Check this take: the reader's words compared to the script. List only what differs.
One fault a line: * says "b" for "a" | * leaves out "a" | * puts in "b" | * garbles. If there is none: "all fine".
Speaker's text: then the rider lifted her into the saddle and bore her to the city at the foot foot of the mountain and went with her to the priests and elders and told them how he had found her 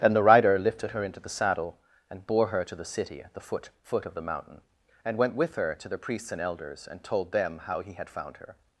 all fine